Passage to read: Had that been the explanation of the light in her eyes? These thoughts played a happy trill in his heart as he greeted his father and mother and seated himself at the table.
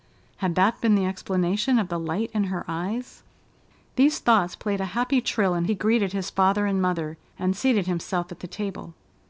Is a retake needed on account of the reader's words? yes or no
yes